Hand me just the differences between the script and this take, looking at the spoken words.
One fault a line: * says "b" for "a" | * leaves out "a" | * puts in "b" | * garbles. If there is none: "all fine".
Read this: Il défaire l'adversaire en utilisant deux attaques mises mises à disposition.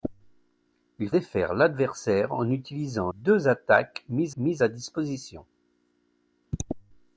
all fine